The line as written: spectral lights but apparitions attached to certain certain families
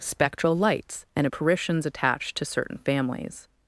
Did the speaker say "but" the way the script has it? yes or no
no